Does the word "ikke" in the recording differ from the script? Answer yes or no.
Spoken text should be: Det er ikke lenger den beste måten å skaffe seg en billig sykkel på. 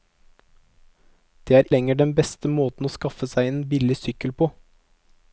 yes